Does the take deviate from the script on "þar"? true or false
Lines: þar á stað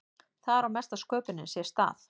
false